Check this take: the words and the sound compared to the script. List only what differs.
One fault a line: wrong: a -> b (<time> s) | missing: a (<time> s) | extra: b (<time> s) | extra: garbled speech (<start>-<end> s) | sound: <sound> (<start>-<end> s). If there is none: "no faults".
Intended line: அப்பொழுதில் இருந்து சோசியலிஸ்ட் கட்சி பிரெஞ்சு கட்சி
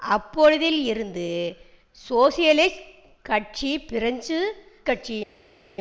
no faults